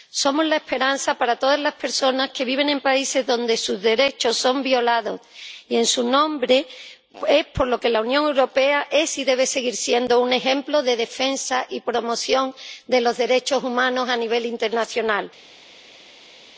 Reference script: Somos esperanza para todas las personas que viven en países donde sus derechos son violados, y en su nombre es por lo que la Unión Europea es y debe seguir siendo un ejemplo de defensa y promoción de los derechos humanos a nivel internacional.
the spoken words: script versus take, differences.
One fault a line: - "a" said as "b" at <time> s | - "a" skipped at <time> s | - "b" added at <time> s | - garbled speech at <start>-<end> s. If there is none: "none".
- "la" added at 0.5 s